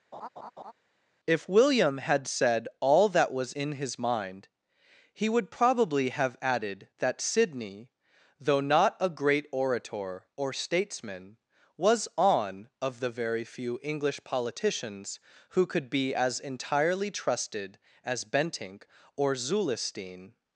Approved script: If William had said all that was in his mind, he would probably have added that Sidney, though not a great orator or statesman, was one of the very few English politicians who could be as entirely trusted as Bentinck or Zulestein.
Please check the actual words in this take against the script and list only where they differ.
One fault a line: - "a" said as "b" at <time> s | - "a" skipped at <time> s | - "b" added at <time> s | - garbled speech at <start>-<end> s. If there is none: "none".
- "one" said as "on" at 12.2 s